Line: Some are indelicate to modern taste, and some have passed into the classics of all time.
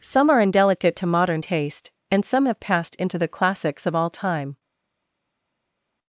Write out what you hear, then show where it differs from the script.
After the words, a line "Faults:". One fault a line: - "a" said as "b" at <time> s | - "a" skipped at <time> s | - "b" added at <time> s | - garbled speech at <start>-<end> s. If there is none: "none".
Some are indelicate to modern taste, and some have passed into the classics of all time.
Faults:
none